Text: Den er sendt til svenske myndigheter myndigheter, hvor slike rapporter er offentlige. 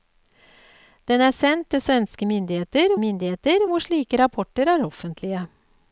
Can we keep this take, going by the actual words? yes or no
yes